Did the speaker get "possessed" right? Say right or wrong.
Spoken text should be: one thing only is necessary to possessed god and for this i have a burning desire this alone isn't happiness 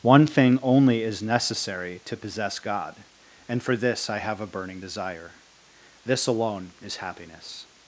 wrong